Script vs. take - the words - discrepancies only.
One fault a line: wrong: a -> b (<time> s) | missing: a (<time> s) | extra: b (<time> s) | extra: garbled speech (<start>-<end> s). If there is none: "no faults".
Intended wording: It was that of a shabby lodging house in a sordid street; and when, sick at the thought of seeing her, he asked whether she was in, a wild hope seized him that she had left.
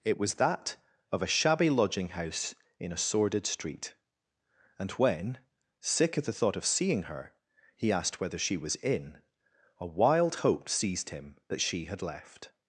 no faults